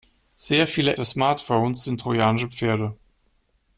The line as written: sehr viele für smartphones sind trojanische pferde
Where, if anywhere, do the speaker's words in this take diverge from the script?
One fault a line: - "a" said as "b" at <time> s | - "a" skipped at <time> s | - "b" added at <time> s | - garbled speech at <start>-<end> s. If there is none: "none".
none